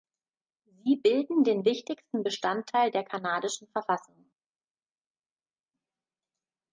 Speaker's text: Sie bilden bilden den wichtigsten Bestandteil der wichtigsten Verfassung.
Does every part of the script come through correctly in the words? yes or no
no